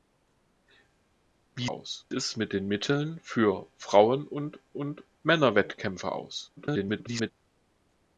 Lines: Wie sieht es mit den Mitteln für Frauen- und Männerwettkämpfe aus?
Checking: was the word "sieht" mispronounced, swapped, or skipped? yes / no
yes